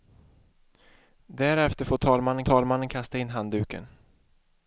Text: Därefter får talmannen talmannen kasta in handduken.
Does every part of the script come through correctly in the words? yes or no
yes